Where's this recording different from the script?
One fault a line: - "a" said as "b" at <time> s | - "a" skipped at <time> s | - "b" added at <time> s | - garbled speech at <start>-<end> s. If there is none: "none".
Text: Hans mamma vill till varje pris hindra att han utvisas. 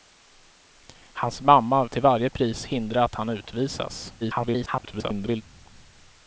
- "vill" skipped at 1.9 s
- garbled speech at 4.2-5.4 s